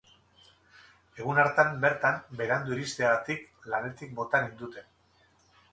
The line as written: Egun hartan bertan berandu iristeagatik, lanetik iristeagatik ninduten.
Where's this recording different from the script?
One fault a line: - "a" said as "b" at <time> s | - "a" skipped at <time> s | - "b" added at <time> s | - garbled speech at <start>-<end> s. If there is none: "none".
- "iristeagatik" said as "bota" at 4.2 s